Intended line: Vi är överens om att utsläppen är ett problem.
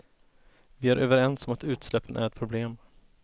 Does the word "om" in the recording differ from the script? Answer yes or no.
no